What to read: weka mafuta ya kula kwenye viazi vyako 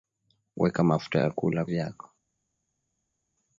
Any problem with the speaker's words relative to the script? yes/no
yes